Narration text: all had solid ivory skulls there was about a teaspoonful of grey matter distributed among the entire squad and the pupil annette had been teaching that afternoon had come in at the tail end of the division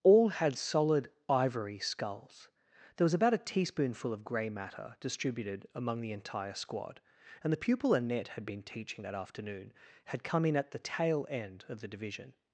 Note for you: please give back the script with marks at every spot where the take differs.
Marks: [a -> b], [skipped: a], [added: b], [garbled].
all had solid ivory skulls there was about a teaspoonful of grey matter distributed among the entire squad and the pupil annette had been teaching that afternoon had come in at the tail end of the division